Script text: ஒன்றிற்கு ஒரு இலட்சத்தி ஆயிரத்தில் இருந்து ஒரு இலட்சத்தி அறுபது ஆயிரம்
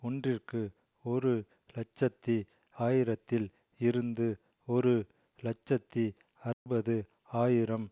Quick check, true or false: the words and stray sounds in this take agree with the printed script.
false